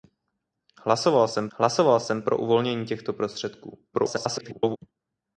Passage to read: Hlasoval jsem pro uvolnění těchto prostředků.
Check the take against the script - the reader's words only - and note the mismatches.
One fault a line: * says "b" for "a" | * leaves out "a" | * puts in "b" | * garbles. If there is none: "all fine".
* puts in "hlasoval jsem"
* garbles